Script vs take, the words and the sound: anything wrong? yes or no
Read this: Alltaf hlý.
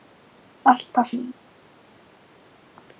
no